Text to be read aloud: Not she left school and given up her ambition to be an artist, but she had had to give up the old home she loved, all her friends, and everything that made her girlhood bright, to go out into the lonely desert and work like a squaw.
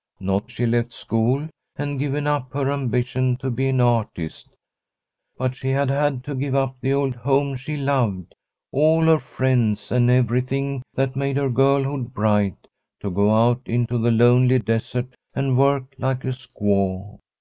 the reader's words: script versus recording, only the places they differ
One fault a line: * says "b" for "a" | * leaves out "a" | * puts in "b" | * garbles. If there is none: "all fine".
all fine